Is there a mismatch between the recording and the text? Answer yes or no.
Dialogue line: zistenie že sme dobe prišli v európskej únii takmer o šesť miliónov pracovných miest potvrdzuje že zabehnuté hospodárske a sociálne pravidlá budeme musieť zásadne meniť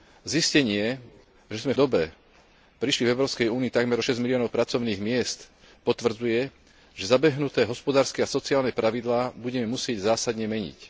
no